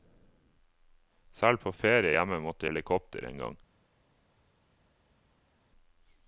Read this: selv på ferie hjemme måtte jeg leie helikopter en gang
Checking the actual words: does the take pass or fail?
fail